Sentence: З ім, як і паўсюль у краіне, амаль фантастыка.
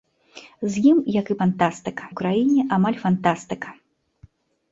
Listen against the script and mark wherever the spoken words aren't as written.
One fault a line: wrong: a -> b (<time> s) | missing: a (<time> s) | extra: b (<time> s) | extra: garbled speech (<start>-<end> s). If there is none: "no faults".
wrong: паўсюль -> фантастыка (1.4 s)